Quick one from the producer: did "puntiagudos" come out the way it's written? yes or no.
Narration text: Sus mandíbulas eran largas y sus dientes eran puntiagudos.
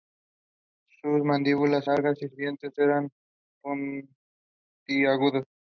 yes